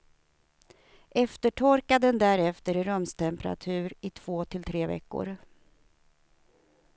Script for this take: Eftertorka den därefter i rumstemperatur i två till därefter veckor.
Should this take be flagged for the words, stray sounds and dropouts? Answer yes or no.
yes